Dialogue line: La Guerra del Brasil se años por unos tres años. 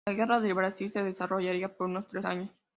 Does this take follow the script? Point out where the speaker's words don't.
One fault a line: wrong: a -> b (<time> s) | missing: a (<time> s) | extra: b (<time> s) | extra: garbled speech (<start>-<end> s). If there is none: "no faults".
wrong: años -> desarrollaría (1.0 s)